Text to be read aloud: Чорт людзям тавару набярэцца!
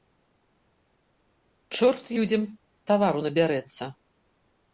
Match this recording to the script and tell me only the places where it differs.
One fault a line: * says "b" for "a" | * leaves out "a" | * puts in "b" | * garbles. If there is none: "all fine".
all fine